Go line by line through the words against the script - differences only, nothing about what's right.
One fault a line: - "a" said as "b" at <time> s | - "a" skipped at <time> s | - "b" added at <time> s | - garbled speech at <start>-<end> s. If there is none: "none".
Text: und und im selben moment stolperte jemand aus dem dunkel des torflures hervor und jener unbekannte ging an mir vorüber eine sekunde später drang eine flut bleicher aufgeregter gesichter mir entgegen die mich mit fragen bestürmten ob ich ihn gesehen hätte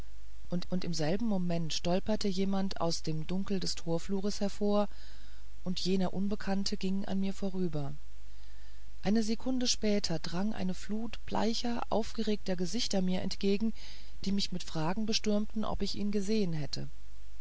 none